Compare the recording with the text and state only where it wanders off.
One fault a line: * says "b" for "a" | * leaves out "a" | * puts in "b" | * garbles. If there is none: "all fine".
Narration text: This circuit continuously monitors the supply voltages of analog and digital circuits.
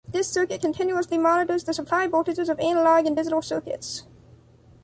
all fine